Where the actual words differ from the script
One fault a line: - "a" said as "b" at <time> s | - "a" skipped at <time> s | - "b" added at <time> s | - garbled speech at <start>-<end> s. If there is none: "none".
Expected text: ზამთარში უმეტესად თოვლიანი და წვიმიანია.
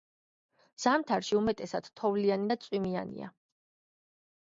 none